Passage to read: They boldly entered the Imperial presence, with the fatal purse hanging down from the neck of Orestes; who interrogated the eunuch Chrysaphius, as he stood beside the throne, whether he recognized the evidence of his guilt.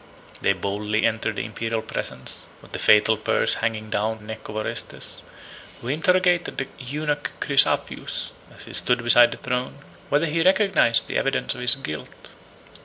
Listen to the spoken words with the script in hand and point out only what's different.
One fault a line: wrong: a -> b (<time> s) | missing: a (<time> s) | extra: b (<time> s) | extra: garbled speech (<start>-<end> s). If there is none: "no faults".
missing: from (4.2 s)